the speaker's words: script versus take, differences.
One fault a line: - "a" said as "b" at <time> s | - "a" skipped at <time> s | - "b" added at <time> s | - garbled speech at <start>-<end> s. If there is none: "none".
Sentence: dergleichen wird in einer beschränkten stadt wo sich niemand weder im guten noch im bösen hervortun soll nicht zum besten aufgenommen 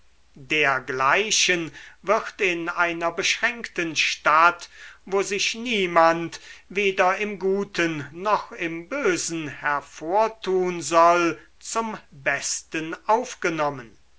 - "nicht" skipped at 11.4 s